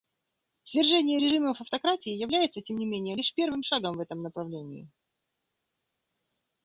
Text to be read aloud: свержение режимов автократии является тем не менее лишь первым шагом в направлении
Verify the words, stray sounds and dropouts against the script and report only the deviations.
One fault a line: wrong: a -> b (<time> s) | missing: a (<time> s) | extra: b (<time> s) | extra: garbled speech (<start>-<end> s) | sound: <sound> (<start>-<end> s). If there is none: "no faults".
extra: этом (4.0 s)